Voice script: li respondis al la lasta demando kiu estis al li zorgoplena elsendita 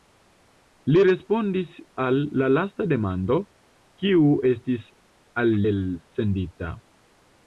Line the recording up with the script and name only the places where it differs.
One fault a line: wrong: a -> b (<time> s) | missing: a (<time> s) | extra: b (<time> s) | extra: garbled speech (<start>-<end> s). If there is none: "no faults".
missing: li zorgoplena (5.5 s)